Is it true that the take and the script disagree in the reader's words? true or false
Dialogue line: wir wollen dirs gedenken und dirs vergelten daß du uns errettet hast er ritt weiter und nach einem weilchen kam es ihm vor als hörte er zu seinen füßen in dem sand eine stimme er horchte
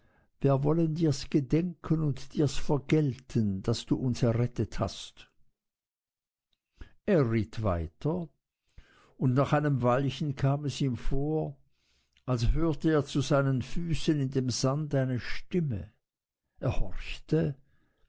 false